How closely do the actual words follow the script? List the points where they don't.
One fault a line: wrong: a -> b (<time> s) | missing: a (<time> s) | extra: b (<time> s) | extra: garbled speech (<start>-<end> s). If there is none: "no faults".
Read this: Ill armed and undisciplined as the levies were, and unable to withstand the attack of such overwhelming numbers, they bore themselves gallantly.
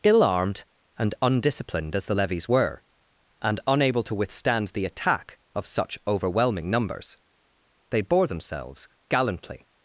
no faults